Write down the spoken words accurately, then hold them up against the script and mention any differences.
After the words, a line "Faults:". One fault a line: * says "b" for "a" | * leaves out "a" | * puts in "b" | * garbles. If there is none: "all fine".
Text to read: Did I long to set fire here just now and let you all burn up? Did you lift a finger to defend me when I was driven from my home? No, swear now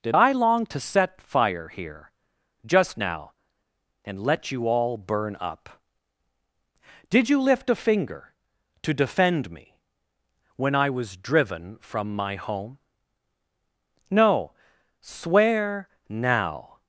Did I long to set fire here just now and let you all burn up? Did you lift a finger to defend me when I was driven from my home? No, swear now
Faults:
all fine